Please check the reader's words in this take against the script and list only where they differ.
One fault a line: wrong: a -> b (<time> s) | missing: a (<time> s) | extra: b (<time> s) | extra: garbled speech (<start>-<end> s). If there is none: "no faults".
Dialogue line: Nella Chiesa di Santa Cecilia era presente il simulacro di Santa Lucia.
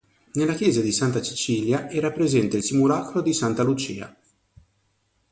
no faults